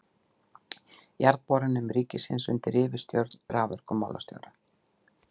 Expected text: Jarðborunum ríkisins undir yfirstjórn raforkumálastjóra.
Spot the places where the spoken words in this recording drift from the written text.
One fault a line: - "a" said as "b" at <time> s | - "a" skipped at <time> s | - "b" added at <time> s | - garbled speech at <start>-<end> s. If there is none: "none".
none